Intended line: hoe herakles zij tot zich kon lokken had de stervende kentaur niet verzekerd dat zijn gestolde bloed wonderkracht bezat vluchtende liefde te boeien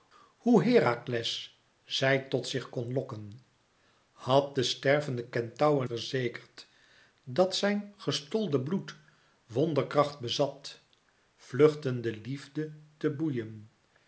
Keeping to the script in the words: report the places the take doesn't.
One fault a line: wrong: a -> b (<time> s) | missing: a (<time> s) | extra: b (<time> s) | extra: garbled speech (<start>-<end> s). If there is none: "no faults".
missing: niet (5.8 s)